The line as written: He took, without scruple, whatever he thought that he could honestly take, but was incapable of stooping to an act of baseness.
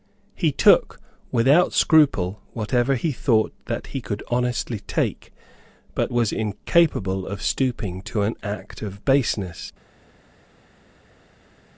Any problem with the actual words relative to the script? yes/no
no